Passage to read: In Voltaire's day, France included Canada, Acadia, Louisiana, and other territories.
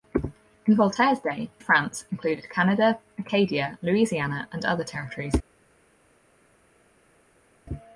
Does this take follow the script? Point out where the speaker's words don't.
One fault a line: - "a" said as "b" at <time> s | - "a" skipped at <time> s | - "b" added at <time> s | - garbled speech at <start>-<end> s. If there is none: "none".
none